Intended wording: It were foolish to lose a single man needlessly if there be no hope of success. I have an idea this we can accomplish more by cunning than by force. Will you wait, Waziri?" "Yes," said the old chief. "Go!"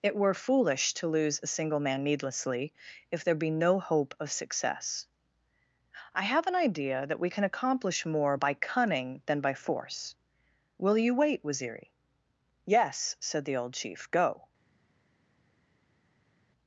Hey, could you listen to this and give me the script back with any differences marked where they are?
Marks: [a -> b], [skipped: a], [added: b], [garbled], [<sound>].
It were foolish to lose a single man needlessly if there be no hope of success. I have an idea [this -> that] we can accomplish more by cunning than by force. Will you wait, Waziri?" "Yes," said the old chief. "Go!"